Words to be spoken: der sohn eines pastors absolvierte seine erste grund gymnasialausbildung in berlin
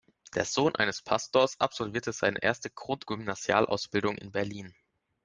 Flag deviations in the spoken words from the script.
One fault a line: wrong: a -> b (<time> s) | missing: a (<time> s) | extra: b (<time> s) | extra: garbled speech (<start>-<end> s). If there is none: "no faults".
no faults